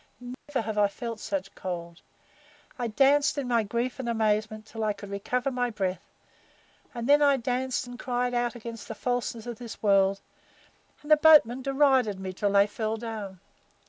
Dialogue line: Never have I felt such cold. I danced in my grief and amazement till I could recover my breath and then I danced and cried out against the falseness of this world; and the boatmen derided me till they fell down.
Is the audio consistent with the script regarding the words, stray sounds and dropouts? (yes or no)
no